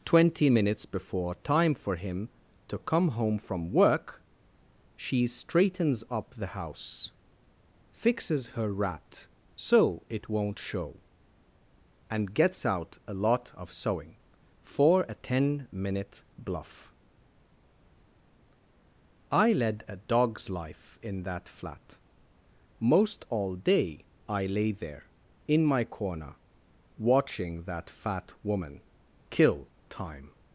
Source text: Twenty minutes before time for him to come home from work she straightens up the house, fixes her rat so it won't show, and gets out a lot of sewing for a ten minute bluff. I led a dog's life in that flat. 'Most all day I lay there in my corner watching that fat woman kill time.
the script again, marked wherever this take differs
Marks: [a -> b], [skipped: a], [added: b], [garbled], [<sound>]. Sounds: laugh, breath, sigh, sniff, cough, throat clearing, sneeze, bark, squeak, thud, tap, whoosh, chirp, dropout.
Twenty minutes before time for him to come home from work she straightens up the house, fixes her rat so it won't show, and gets out a lot of sewing for a ten minute bluff. I led a dog's life in that flat. 'Most all day I lay there in my corner watching that fat woman kill time.